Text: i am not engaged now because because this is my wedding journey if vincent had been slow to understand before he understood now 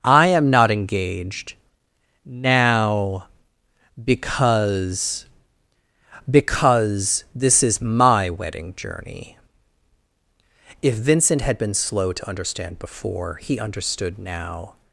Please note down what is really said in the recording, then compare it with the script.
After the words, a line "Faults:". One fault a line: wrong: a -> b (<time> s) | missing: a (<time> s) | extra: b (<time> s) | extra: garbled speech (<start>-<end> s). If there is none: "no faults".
i am not engaged now because because this is my wedding journey if vincent had been slow to understand before he understood now
Faults:
no faults